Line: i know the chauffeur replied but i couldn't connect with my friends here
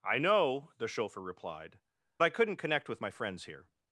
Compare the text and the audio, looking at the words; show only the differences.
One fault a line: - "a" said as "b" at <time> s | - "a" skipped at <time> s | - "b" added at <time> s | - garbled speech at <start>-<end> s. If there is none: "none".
- "but" skipped at 1.8 s